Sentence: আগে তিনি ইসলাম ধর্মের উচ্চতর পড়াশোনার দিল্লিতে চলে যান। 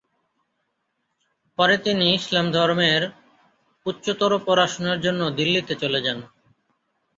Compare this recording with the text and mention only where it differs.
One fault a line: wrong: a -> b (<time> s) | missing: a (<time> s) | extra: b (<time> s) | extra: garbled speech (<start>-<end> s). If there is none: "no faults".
wrong: আগে -> পরে (1.6 s)
extra: জন্য (5.0 s)